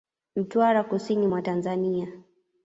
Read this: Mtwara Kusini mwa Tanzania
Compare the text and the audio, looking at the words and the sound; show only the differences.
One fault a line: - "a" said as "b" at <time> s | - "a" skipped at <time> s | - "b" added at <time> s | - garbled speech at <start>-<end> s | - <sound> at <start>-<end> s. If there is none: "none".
none